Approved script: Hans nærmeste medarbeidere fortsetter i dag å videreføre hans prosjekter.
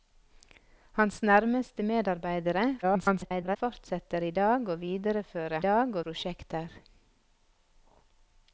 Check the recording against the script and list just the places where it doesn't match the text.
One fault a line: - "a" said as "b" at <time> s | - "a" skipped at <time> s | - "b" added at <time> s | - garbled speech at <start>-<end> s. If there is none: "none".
- garbled speech at 2.8-3.6 s
- "hans" said as "dag" at 5.6 s